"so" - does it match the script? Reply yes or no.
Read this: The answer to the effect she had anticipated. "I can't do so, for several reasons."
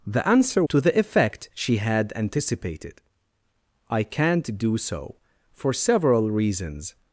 yes